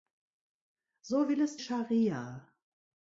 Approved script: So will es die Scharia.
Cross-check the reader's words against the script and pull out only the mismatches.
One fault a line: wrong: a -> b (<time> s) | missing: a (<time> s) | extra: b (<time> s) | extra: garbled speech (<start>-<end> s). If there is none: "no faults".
missing: die (1.6 s)